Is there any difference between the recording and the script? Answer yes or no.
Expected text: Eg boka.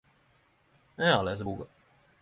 yes